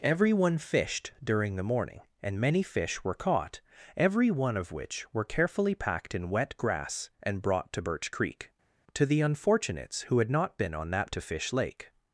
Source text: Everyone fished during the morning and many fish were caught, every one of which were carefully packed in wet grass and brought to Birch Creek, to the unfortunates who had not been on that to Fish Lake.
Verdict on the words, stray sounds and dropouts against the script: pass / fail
pass